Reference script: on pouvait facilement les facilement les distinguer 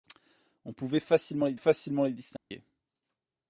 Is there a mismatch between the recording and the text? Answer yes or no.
no